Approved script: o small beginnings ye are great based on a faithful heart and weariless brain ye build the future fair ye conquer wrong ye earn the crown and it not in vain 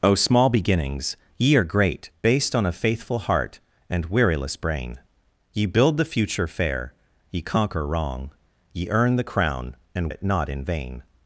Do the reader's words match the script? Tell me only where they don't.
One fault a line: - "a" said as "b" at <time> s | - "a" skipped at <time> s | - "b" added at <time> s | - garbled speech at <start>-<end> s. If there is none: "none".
none